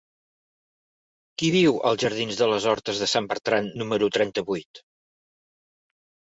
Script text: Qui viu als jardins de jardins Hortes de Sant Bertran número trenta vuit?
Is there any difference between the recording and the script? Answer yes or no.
yes